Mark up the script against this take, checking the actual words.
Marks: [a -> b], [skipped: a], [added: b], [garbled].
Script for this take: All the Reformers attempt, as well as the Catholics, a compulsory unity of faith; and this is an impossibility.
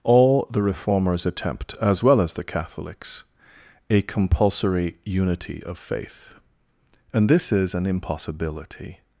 All the Reformers attempt, as well as the Catholics, a compulsory unity of faith; and this is an impossibility.